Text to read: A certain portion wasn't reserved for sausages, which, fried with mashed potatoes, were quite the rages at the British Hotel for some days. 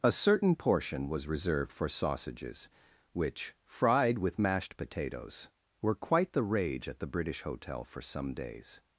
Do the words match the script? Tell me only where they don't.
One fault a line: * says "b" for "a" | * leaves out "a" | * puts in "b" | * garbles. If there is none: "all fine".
* says "was" for "wasn't"
* says "rage" for "rages"